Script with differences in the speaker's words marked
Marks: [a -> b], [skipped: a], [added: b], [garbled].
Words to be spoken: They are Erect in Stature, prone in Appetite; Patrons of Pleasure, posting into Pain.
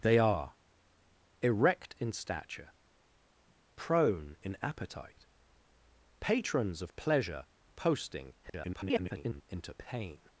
They are Erect in Stature, prone in Appetite; Patrons of Pleasure, posting [garbled] into Pain.